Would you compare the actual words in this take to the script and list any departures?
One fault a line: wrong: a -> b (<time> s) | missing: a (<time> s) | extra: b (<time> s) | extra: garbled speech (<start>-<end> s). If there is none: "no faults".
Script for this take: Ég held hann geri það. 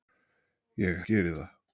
missing: held hann (1.0 s)